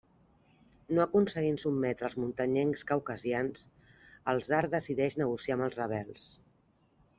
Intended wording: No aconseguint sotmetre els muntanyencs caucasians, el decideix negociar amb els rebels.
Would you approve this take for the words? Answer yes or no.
no